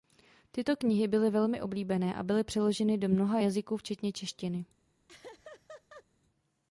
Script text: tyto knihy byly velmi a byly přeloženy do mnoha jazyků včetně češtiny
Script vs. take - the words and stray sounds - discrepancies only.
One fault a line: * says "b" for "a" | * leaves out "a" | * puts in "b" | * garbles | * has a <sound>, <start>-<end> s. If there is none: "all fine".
* puts in "oblíbené"
* has a laugh, 5.1-6.0 s